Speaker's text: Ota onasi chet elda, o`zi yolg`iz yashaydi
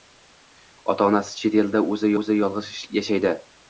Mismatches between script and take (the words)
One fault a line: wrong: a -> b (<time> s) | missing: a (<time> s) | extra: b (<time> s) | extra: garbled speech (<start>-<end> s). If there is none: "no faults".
extra: o`zi (2.2 s)